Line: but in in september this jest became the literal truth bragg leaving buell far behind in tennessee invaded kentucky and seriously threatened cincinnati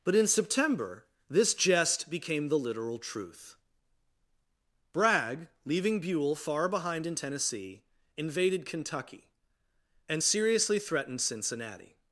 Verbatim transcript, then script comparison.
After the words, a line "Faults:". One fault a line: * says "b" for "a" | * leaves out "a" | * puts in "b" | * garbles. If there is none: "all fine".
but in september this jest became the literal truth bragg leaving buell far behind in tennessee invaded kentucky and seriously threatened cincinnati
Faults:
* leaves out "in"